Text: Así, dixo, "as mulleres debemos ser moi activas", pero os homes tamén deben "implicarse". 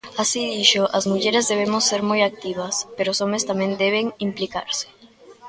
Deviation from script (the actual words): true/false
false